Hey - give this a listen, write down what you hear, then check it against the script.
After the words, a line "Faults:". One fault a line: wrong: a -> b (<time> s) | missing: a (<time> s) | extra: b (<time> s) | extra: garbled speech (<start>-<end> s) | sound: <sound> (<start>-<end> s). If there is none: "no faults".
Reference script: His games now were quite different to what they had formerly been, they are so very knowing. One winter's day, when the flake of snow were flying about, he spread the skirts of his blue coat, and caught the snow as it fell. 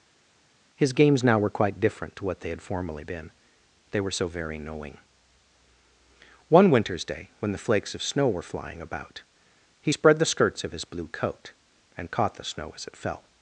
His games now were quite different to what they had formerly been, they were so very knowing. One winter's day, when the flakes of snow were flying about, he spread the skirts of his blue coat, and caught the snow as it fell.
Faults:
wrong: are -> were (4.0 s)
wrong: flake -> flakes (7.6 s)